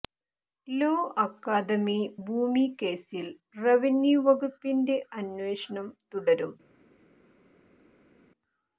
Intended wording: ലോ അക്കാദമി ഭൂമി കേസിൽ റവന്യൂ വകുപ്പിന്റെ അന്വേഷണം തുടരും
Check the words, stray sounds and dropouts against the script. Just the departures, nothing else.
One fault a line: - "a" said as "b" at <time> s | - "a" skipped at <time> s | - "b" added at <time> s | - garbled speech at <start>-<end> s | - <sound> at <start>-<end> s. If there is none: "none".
none